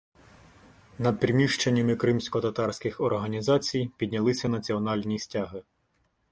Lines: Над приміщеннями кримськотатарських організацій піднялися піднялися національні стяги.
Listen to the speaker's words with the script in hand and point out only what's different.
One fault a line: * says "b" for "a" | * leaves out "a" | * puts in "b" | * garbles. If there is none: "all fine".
* leaves out "піднялися"